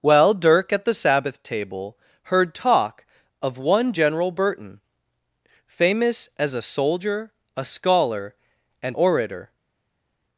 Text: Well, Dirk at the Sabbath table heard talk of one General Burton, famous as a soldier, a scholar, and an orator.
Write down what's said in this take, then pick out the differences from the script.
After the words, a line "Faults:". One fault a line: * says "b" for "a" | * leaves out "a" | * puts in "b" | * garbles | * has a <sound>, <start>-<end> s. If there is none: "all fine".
Well, Dirk at the Sabbath table heard talk of one General Burton, famous as a soldier, a scholar, and orator.
Faults:
* leaves out "an"